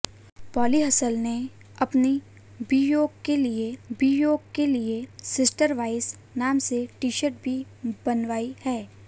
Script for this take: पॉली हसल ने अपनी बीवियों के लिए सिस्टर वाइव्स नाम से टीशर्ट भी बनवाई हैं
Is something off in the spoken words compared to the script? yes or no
yes